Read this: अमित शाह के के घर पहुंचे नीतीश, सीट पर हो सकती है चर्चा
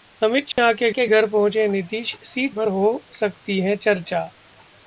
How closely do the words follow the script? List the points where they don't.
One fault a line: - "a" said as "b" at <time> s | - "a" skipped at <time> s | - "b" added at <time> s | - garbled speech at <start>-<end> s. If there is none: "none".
none